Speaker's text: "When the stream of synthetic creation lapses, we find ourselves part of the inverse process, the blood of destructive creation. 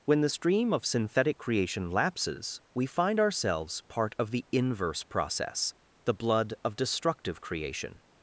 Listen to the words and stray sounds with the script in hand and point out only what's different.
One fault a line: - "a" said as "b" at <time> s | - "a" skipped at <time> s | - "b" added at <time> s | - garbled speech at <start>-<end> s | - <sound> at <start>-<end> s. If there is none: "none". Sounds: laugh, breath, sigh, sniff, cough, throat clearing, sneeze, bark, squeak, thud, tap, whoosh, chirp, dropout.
none